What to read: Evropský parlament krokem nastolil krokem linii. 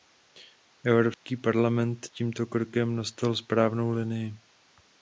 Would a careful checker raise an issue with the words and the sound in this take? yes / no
yes